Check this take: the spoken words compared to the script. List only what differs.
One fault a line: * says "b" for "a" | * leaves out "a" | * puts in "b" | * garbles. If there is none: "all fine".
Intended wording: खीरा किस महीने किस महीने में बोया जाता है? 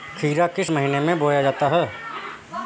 * leaves out "किस महीने"